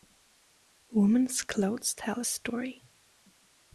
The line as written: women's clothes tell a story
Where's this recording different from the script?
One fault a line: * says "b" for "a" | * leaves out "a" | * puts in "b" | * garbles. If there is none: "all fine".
all fine